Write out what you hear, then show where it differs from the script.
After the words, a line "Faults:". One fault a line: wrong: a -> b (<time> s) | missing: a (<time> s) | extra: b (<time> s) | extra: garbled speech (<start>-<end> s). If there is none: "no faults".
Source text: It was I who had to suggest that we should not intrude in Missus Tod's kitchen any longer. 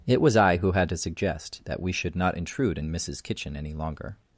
It was I who had to suggest that we should not intrude in Missus kitchen any longer.
Faults:
missing: Tod's (3.2 s)